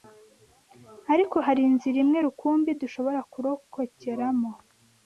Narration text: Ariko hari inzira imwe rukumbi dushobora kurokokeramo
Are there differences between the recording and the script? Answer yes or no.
no